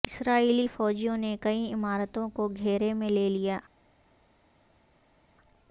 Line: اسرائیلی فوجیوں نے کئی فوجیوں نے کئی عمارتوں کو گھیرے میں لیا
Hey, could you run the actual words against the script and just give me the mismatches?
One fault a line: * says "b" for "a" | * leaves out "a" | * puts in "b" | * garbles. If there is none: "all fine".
* leaves out "فوجیوں نے کئی"
* puts in "لے"